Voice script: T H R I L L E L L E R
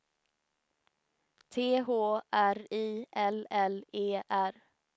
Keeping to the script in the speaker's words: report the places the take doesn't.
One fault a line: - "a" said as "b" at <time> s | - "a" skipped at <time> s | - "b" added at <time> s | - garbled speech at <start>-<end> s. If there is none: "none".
- "L L E" skipped at 4.2 s